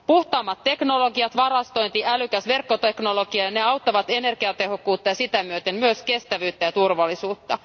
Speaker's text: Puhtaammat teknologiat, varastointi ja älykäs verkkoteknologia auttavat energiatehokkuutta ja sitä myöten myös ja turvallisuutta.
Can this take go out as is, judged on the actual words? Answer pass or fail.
fail